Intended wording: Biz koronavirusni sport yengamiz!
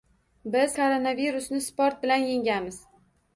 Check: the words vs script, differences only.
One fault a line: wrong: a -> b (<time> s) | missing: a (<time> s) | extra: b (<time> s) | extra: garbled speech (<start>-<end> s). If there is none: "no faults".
extra: bilan (2.0 s)